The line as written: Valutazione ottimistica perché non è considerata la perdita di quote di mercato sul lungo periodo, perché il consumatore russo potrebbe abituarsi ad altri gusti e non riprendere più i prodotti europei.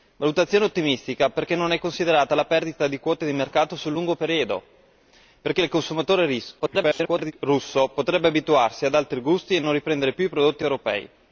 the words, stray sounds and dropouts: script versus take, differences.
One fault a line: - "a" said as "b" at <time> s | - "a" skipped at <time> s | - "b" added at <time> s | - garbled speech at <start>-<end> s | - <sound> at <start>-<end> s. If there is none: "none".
- garbled speech at 6.6-7.3 s